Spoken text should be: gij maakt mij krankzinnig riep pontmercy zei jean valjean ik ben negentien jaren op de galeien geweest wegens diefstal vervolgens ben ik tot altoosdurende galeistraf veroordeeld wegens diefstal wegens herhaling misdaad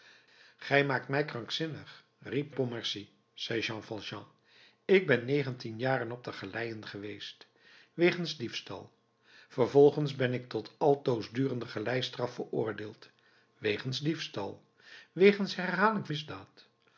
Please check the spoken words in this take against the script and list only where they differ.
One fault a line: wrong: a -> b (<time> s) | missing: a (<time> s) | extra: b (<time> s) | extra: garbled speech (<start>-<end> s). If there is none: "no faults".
no faults